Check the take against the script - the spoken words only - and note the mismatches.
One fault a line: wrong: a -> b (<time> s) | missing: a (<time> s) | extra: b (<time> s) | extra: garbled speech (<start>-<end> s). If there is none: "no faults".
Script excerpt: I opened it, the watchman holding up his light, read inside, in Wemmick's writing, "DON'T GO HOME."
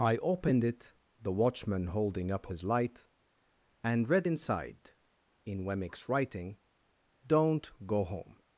extra: and (3.8 s)